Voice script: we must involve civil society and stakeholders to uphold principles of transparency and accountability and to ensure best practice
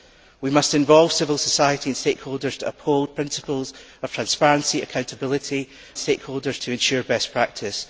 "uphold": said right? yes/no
yes